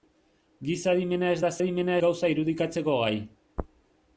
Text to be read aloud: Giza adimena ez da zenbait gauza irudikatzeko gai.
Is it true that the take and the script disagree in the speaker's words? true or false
true